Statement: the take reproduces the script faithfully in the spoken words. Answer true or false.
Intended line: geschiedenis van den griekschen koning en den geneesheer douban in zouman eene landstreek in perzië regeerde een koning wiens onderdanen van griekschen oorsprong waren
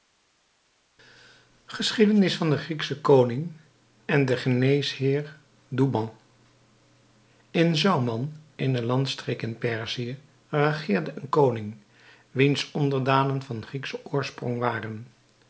true